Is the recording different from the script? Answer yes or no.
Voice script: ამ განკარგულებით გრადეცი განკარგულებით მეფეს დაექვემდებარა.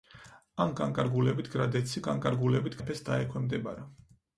no